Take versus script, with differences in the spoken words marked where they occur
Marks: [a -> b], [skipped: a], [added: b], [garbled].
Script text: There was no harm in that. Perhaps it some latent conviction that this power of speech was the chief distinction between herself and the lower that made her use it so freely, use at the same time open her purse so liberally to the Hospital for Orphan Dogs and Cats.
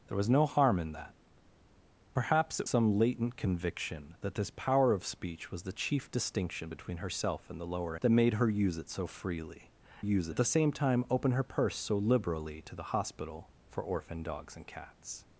There was no harm in that. Perhaps it some latent conviction that this power of speech was the chief distinction between herself and the lower that made her use it so freely, use at the same time open her purse so liberally to the Hospital for Orphan Dogs and Cats.